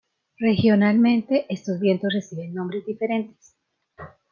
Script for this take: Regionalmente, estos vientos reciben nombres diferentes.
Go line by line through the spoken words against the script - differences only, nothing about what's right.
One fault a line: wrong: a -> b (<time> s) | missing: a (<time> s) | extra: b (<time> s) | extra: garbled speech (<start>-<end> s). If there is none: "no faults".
no faults